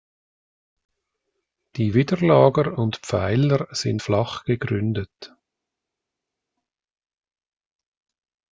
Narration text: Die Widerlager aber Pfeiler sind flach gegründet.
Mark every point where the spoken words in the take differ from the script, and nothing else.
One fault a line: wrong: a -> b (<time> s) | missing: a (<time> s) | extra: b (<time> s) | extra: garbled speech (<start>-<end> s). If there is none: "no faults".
wrong: aber -> und (2.8 s)